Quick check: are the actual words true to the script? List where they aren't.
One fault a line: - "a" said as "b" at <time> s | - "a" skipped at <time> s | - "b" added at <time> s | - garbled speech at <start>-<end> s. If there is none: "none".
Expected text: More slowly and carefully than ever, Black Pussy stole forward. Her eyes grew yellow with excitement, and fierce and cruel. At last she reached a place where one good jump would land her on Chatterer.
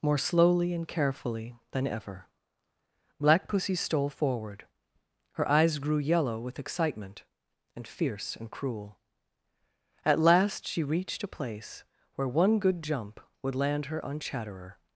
none